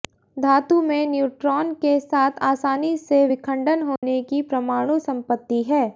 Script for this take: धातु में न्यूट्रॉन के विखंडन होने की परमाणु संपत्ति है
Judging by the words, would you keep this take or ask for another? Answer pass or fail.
fail